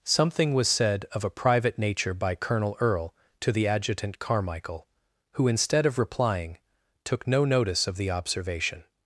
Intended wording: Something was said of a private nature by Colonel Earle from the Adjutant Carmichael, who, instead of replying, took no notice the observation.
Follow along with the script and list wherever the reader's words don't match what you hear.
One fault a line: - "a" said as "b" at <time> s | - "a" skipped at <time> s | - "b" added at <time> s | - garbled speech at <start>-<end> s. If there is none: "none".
- "from" said as "to" at 3.4 s
- "of" added at 7.8 s